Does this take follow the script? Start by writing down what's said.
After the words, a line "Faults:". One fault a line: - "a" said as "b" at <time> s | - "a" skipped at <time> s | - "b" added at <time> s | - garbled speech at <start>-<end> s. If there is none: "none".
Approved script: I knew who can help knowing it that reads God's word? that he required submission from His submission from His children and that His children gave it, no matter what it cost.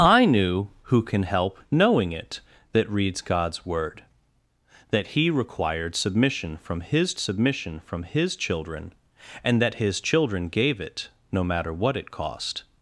I knew who can help knowing it that reads God's word? that he required submission from His submission from His children and that His children gave it, no matter what it cost.
Faults:
none